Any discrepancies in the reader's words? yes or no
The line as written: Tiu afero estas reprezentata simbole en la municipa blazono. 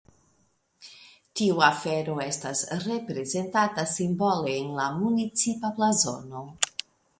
no